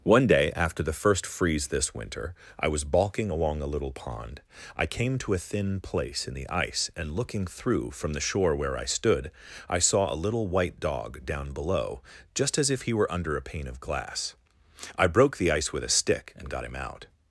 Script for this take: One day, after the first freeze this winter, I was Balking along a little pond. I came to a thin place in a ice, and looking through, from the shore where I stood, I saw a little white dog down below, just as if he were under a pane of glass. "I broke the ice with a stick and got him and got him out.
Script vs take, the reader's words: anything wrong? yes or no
yes